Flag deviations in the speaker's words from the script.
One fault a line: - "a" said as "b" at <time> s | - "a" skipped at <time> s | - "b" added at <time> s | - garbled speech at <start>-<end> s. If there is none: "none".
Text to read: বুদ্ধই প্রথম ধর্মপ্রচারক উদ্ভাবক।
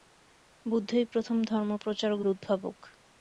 none